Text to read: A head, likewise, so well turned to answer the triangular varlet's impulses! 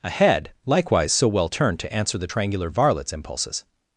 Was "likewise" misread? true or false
false